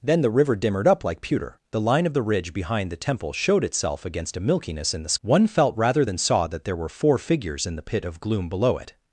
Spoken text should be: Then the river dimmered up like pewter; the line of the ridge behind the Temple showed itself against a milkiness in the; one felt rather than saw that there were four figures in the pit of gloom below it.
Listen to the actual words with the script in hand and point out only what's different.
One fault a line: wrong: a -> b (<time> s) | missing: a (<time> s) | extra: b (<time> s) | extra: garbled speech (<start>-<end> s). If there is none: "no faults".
no faults